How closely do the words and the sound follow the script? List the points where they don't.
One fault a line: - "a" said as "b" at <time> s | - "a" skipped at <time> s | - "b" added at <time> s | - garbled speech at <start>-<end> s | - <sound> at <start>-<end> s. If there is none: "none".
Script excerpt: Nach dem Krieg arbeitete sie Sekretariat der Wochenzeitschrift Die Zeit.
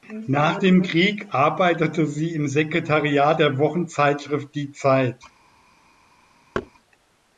- "im" added at 2.3 s
- thud at 6.5-6.7 s